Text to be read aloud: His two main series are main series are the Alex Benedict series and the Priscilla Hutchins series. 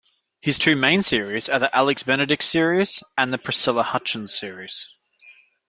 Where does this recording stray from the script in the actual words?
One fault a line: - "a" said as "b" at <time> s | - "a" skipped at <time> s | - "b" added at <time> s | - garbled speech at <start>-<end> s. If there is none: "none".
- "main series are" skipped at 1.6 s